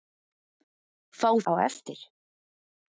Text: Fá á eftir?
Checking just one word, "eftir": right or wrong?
right